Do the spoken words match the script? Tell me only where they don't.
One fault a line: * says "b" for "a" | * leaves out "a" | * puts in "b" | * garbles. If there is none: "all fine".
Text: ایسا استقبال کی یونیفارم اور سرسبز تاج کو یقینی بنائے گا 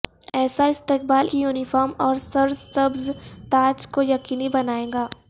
all fine